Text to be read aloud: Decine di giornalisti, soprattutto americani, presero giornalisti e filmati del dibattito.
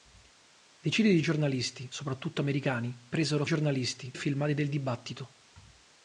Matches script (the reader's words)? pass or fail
pass